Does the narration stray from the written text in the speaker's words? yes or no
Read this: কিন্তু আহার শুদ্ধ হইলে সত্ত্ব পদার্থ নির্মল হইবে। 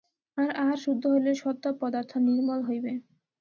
yes